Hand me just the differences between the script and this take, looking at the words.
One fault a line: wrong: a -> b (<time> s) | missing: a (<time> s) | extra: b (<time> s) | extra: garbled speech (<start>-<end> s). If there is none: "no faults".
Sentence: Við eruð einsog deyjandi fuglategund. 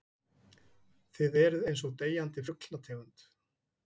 wrong: Við -> Þið (1.2 s)